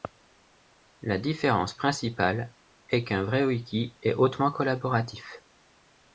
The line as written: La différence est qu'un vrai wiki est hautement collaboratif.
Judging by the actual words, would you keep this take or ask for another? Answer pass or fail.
fail